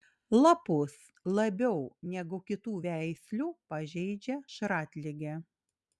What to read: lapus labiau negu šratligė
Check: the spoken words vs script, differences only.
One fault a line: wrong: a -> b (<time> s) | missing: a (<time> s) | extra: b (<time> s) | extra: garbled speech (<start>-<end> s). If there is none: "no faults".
extra: kitų veislių pažeidžia (2.5 s)